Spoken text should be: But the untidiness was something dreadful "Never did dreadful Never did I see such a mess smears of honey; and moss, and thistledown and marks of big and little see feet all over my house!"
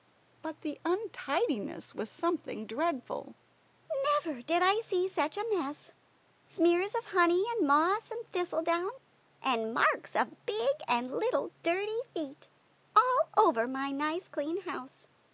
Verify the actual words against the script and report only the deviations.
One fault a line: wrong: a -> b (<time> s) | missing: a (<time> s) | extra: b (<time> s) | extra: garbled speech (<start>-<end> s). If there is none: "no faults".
missing: dreadful Never did (4.6 s)
wrong: see -> dirty (11.6 s)
extra: nice clean (13.9 s)